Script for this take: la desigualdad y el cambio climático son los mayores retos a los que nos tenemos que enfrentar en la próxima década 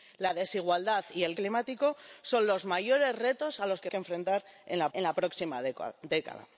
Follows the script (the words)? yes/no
no